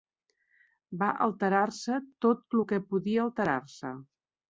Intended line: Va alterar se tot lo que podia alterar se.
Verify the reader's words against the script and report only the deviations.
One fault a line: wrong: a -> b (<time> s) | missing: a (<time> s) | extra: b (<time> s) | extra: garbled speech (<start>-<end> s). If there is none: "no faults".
no faults